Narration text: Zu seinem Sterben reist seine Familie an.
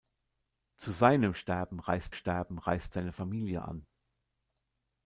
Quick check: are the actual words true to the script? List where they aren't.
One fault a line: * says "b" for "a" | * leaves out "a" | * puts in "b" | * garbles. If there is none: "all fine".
* puts in "Sterben reist"